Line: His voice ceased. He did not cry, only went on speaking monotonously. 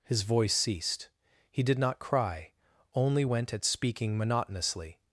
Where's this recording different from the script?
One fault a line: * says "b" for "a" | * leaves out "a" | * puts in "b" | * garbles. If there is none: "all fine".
* says "at" for "on"